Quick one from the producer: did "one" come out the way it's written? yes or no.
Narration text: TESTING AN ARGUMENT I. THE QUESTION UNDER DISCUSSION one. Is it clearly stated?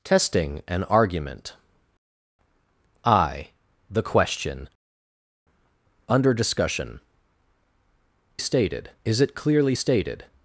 no